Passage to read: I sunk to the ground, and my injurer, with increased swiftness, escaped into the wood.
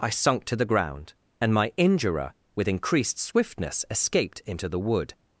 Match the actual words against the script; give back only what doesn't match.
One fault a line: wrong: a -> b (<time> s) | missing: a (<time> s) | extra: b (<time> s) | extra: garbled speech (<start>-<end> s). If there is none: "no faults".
no faults